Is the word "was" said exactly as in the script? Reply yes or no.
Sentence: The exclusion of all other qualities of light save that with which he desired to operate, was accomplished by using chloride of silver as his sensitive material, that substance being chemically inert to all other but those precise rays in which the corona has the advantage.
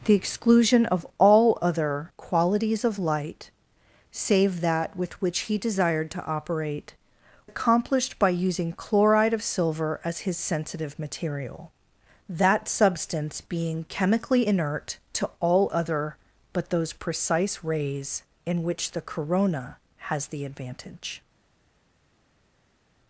no